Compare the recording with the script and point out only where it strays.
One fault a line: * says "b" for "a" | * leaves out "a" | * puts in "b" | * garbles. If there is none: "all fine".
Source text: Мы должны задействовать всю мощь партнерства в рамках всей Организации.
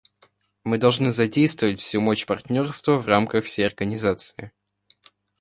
all fine